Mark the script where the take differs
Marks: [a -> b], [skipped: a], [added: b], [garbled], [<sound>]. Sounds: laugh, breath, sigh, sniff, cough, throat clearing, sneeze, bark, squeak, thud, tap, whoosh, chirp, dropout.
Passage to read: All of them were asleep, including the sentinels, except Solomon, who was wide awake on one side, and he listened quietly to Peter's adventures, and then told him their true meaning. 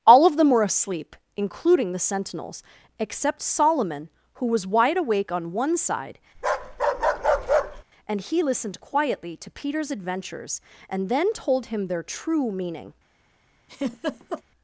All of them were asleep, including the sentinels, except Solomon, who was wide awake on one side, [bark] and he listened quietly to Peter's adventures, and then told him their true meaning. [laugh]